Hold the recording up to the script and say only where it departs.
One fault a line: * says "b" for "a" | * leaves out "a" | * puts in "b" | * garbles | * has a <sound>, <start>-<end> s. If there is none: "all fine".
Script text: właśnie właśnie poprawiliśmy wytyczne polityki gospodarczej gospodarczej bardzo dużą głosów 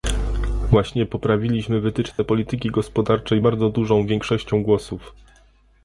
* leaves out "właśnie"
* has a dropout, 2.1-2.2 s
* leaves out "gospodarczej"
* puts in "większością"